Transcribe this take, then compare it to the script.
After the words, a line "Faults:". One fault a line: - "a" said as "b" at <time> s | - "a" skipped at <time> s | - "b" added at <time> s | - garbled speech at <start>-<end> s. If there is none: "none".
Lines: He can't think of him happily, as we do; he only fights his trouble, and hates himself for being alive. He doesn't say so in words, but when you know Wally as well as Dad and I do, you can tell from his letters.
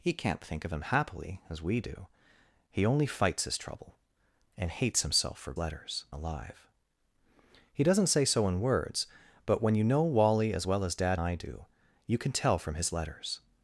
He can't think of him happily, as we do; he only fights his trouble, and hates himself for letters alive. He doesn't say so in words, but when you know Wally as well as Dad I do, you can tell from his letters.
Faults:
- "being" said as "letters" at 5.6 s
- "and" skipped at 11.2 s